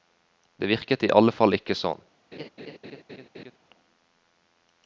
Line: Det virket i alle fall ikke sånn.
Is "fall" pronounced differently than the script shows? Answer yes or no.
no